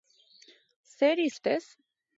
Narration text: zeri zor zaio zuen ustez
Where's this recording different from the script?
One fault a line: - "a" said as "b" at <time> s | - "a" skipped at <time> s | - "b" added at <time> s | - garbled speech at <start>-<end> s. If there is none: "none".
- "zor zaio zuen" skipped at 1.3 s